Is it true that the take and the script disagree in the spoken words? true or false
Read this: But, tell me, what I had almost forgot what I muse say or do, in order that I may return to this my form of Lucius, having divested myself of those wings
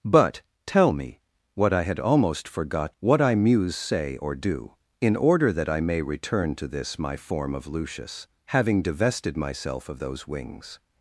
false